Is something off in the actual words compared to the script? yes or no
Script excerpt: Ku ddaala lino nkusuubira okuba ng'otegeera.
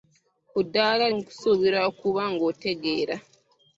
yes